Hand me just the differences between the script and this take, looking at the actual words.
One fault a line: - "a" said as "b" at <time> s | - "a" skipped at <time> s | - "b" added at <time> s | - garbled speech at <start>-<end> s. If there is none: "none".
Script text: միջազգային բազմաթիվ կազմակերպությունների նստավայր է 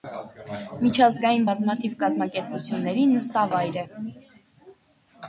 none